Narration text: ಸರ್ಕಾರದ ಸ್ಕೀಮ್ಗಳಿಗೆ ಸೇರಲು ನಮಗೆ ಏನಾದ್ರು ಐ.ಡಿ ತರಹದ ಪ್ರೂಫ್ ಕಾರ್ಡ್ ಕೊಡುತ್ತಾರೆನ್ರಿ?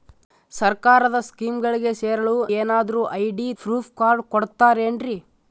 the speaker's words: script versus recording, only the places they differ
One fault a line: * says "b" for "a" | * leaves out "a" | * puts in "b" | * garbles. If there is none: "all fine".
* leaves out "ನಮಗೆ"
* leaves out "ತರಹದ"